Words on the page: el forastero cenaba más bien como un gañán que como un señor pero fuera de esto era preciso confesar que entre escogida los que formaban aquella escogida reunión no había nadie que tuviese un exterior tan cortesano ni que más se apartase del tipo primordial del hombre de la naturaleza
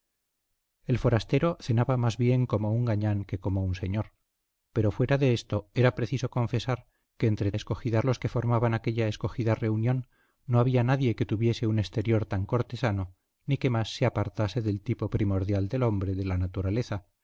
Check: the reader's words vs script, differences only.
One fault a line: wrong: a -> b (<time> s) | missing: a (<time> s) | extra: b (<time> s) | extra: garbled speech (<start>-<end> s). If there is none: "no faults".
no faults